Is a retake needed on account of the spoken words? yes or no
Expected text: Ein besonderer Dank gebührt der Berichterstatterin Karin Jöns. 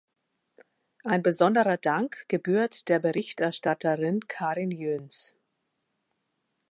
no